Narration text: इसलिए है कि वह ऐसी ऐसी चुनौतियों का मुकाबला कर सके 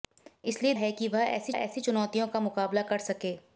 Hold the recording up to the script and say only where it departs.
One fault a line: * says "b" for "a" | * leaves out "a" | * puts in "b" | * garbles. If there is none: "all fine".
all fine